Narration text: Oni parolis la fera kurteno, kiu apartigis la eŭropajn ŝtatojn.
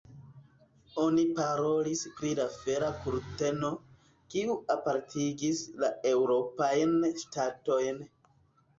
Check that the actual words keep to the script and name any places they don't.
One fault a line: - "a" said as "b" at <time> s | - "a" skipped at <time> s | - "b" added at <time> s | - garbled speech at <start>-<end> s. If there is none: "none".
- "pri" added at 2.2 s